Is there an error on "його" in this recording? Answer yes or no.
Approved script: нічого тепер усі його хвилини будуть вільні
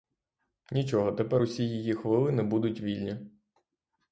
yes